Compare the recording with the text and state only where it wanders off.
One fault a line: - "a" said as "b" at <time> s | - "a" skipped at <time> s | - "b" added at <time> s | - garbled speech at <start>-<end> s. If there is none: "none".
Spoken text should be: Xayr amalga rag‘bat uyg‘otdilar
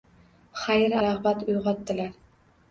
- "amalga" skipped at 0.9 s